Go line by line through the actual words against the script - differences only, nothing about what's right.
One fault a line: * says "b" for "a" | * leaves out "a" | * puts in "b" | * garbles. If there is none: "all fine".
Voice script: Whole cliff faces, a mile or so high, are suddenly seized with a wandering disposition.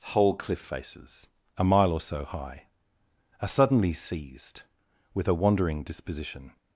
all fine